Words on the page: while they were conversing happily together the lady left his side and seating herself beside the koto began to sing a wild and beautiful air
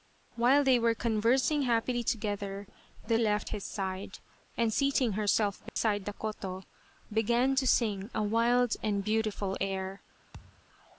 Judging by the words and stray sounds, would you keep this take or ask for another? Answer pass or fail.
fail